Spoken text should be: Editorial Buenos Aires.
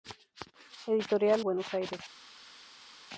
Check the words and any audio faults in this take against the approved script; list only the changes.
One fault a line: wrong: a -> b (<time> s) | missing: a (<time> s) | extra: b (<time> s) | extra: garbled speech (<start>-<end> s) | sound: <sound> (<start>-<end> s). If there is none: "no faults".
no faults